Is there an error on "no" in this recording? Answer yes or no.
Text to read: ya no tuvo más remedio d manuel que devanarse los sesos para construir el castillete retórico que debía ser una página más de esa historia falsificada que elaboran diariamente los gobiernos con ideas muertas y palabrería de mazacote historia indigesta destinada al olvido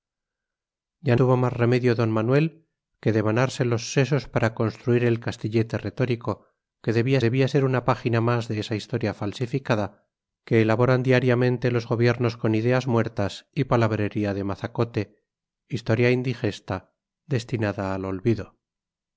yes